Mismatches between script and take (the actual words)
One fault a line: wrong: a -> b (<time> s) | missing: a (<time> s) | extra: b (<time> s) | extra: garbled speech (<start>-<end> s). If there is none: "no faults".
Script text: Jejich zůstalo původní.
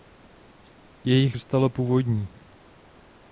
no faults